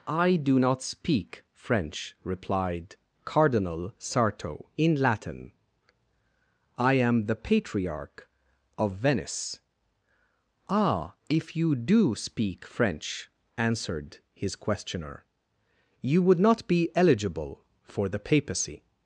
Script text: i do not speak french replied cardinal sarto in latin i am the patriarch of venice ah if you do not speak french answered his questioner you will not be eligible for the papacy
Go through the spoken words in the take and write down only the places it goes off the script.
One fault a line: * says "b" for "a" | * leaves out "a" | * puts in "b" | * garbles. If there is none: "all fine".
* leaves out "not"
* says "would" for "will"